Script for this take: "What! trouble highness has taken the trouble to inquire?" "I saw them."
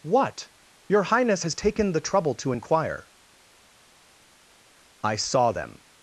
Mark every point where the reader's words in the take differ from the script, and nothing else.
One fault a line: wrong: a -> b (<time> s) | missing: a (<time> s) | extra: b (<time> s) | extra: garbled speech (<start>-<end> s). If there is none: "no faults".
wrong: trouble -> your (0.9 s)